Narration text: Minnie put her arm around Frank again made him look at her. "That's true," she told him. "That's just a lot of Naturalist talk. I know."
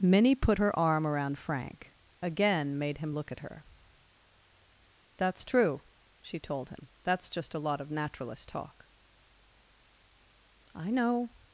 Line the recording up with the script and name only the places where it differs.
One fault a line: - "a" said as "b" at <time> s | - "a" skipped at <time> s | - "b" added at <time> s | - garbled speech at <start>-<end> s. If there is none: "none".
none